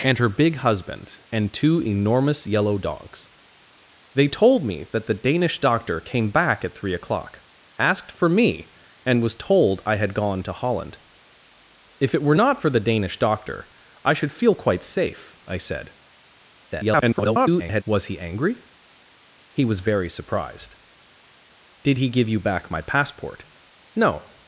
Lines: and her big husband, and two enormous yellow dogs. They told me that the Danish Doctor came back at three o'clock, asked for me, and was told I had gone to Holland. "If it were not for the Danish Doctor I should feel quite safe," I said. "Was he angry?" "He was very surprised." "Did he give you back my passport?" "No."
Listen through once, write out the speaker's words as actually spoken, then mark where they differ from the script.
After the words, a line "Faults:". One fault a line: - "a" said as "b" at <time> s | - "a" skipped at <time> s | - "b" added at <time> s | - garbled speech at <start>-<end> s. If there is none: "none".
and her big husband, and two enormous yellow dogs. They told me that the Danish Doctor came back at three o'clock, asked for me, and was told I had gone to Holland. "If it were not for the Danish Doctor I should feel quite safe," I said. [garbled] "Was he angry?" "He was very surprised." "Did he give you back my passport?" "No."
Faults:
- garbled speech at 16.7-17.8 s